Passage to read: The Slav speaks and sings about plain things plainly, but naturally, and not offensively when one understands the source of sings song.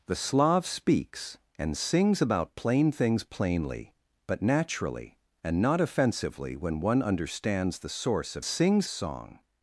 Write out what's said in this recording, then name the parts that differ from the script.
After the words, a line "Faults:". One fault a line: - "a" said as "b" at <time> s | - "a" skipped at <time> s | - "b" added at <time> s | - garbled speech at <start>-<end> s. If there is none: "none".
The Slav speaks and sings about plain things plainly, but naturally, and not offensively when one understands the source of sings song.
Faults:
none